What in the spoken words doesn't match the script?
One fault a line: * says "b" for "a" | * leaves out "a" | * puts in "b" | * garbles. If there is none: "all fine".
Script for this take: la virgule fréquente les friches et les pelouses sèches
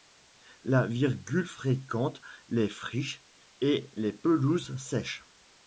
all fine